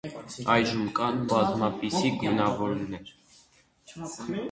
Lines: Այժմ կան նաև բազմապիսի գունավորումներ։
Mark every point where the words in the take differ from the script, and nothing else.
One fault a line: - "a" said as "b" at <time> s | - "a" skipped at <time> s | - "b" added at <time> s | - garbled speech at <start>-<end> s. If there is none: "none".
- "նաև" skipped at 1.2 s